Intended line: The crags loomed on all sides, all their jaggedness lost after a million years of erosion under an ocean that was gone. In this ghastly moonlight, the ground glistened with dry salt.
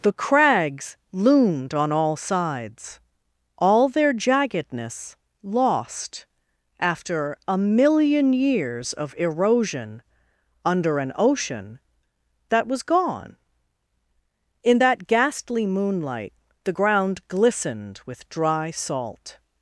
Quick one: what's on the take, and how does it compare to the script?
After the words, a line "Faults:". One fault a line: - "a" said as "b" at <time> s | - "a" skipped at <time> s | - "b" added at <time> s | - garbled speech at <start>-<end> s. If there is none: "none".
The crags loomed on all sides, all their jaggedness lost after a million years of erosion under an ocean that was gone. In that ghastly moonlight, the ground glistened with dry salt.
Faults:
- "this" said as "that" at 14.8 s